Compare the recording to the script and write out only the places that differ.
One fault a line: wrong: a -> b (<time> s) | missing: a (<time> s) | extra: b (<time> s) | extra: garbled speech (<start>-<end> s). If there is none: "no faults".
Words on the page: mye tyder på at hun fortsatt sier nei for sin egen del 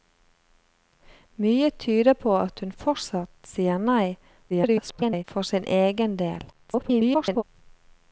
extra: garbled speech (4.5-5.2 s)
extra: garbled speech (6.5-7.4 s)